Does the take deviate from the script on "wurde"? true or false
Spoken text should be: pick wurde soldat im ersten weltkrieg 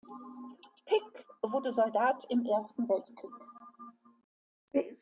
false